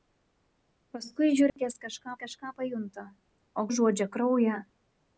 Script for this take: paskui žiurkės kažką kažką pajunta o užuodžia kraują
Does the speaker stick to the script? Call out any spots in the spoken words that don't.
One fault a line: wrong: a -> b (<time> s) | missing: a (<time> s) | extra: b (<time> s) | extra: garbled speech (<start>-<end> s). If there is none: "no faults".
no faults